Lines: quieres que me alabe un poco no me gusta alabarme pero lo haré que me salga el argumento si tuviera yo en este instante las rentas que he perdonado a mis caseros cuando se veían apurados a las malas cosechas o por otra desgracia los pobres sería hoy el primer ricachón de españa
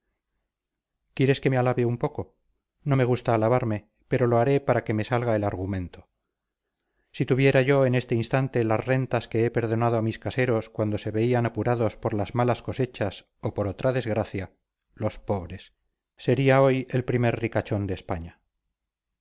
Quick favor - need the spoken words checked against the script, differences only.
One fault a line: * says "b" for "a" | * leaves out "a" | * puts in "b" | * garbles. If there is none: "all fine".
* puts in "para"
* says "por" for "a"